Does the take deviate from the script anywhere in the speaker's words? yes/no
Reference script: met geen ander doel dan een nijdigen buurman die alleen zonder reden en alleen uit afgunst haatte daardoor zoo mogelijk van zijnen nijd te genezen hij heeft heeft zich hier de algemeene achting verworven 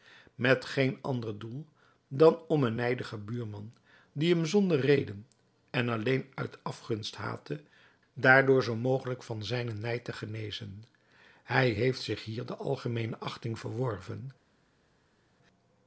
yes